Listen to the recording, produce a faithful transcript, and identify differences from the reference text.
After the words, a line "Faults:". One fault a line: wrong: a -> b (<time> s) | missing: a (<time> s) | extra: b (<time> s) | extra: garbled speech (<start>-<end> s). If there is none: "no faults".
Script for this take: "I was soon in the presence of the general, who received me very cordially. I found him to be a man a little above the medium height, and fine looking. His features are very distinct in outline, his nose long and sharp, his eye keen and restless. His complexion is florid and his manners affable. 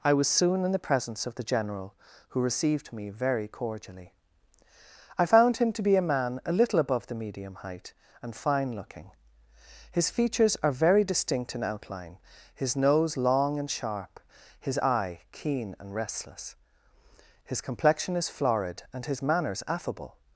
"I was soon in the presence of the general, who received me very cordially. I found him to be a man a little above the medium height, and fine looking. His features are very distinct in outline, his nose long and sharp, his eye keen and restless. His complexion is florid and his manners affable.
Faults:
no faults